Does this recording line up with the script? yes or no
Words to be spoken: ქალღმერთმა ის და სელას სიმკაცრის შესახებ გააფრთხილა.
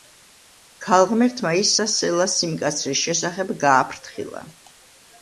yes